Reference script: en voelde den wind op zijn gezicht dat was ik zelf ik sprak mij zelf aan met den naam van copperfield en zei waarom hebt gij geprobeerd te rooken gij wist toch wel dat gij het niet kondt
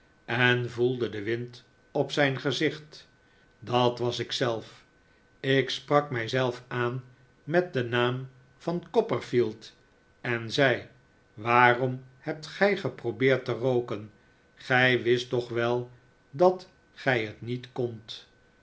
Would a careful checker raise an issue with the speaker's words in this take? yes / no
no